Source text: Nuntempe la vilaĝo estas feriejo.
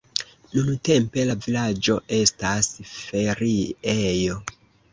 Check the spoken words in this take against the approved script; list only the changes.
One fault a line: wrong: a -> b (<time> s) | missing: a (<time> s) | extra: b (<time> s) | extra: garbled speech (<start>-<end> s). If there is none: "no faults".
no faults